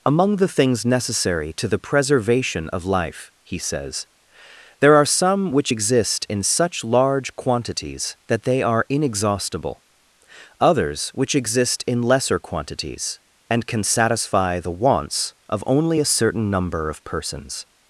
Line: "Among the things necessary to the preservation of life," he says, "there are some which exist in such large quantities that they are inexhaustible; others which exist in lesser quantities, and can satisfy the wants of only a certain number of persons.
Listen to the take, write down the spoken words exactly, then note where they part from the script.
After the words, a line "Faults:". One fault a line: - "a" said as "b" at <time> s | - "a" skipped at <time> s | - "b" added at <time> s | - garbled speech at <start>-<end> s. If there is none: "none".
"Among the things necessary to the preservation of life," he says, "there are some which exist in such large quantities that they are inexhaustible; others which exist in lesser quantities, and can satisfy the wants of only a certain number of persons.
Faults:
none